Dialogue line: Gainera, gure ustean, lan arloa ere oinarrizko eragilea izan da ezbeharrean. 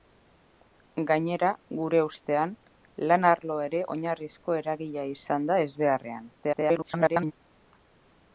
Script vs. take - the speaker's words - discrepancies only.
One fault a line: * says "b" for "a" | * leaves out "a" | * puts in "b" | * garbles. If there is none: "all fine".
* garbles